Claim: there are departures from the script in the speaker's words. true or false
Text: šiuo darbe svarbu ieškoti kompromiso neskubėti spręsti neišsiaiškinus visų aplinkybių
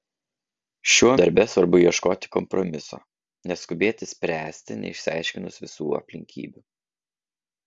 false